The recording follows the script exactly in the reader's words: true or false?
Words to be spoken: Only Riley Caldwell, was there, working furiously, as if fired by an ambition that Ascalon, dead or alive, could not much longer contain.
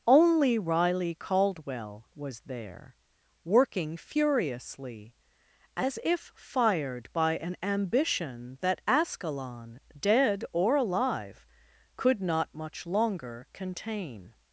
true